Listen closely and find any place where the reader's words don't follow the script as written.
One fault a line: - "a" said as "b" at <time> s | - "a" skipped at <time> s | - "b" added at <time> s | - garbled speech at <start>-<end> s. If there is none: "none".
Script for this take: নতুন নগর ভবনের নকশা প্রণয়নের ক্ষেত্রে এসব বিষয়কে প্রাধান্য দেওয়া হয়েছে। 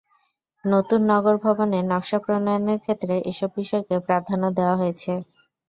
none